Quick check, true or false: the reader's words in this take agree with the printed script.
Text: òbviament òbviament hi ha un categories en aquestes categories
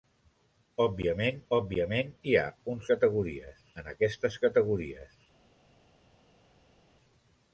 true